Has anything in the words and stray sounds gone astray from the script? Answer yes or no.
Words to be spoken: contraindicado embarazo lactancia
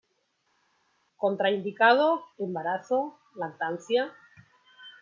no